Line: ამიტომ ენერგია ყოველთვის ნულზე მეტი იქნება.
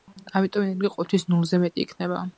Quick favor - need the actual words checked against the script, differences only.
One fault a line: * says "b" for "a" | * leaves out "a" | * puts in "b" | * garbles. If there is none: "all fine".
all fine